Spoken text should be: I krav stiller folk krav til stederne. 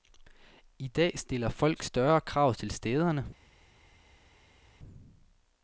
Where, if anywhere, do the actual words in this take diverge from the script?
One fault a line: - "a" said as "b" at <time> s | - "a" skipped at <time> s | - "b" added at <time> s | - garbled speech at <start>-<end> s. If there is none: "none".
- "krav" said as "dag" at 0.9 s
- "større" added at 1.8 s